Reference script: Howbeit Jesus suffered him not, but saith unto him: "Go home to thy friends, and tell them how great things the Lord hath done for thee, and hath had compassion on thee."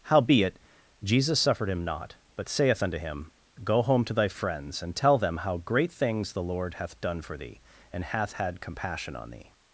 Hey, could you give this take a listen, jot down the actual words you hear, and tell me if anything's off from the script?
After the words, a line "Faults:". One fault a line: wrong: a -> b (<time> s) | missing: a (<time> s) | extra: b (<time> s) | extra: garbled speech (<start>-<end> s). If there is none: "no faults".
Howbeit Jesus suffered him not, but saith unto him: "Go home to thy friends, and tell them how great things the Lord hath done for thee, and hath had compassion on thee."
Faults:
no faults